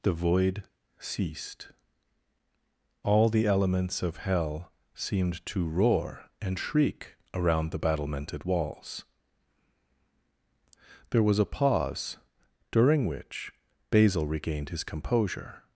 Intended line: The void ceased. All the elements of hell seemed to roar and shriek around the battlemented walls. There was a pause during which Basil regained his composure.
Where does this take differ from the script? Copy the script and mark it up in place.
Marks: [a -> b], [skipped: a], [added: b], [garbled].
The void ceased. All the elements of hell seemed to roar and shriek around the battlemented walls. There was a pause during which Basil regained his composure.